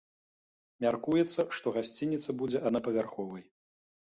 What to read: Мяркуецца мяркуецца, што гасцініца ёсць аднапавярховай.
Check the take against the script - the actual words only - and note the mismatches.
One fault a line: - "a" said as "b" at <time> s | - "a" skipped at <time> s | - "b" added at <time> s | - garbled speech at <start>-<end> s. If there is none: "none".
- "мяркуецца" skipped at 1.4 s
- "ёсць" said as "будзе" at 2.4 s